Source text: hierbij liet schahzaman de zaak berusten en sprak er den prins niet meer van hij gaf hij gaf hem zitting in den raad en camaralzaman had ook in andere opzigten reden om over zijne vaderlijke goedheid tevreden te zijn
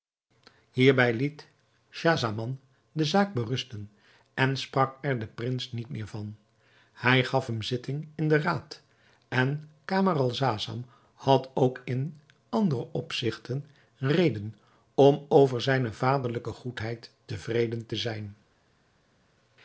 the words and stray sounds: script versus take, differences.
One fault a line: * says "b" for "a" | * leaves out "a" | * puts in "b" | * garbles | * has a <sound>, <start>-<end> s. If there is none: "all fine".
* leaves out "hij gaf"